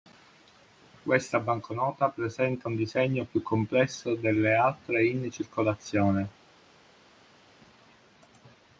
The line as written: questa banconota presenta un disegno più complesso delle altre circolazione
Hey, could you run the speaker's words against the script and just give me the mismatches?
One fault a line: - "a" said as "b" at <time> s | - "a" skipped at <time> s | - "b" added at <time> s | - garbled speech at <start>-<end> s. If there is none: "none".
- "in" added at 5.0 s